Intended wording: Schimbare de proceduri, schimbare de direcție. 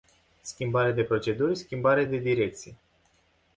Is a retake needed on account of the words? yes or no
no